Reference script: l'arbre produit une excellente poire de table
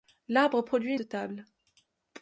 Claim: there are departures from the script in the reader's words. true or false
true